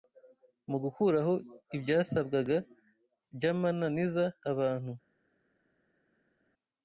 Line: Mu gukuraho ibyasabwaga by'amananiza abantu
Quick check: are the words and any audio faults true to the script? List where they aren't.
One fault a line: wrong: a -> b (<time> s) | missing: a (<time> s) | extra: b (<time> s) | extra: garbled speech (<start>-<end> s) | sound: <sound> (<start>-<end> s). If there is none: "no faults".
no faults